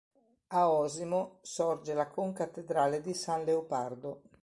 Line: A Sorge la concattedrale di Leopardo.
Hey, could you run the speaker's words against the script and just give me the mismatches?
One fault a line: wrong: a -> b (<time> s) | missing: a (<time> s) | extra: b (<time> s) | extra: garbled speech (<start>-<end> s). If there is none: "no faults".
extra: Osimo (0.7 s)
extra: San (3.1 s)